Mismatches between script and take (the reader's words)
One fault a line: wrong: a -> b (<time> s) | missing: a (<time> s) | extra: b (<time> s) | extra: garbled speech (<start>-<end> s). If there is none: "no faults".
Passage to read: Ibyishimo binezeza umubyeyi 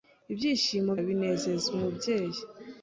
no faults